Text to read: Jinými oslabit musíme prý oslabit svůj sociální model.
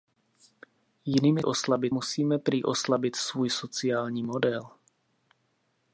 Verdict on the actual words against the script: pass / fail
pass